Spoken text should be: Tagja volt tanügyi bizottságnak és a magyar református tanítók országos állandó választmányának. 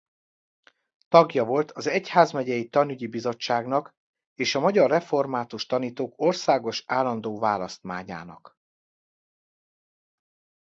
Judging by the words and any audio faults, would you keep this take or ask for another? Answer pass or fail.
fail